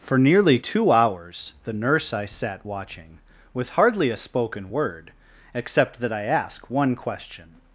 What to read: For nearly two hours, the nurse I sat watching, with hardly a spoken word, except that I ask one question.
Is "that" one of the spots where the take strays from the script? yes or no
no